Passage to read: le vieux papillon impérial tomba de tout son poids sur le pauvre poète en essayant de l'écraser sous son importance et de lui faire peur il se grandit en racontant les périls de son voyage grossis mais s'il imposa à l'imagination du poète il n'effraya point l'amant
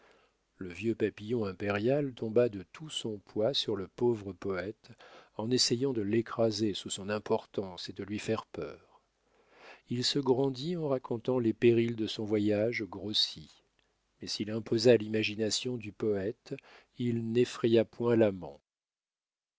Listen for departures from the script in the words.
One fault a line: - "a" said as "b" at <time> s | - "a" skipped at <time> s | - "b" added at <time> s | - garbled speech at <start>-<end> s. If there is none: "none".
none